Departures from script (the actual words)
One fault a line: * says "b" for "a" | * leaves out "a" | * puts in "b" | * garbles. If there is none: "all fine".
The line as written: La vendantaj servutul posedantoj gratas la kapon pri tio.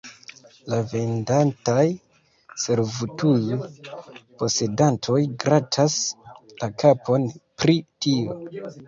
all fine